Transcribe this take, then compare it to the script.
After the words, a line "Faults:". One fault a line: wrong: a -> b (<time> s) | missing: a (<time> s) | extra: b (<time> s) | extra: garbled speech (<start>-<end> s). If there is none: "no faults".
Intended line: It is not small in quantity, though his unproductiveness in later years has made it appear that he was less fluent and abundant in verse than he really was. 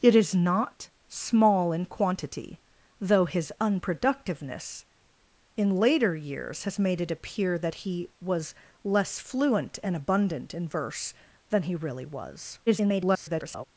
It is not small in quantity, though his unproductiveness in later years has made it appear that he was less fluent and abundant in verse than he really was. [garbled]
Faults:
extra: garbled speech (12.7-13.6 s)